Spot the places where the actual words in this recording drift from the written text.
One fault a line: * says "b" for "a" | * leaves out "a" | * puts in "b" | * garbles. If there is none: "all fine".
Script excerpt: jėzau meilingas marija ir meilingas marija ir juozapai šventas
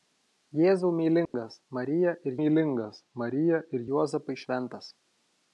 all fine